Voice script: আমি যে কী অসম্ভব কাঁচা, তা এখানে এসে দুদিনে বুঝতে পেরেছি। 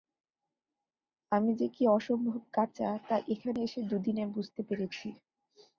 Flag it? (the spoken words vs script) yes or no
no